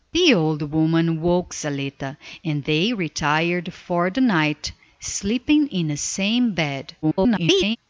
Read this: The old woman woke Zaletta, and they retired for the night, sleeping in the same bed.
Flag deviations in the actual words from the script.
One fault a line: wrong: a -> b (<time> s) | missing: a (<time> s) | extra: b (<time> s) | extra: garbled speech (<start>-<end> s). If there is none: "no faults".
extra: garbled speech (7.0-7.8 s)